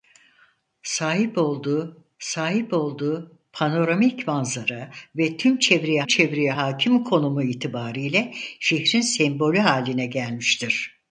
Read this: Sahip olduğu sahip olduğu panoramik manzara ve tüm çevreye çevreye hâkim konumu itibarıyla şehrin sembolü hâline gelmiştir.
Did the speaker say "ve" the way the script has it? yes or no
yes